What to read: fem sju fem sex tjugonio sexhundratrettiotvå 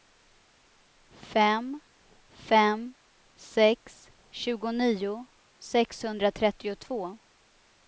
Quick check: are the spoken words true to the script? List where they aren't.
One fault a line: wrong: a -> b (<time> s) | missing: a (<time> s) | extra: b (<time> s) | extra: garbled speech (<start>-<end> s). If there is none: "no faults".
missing: sju (1.7 s)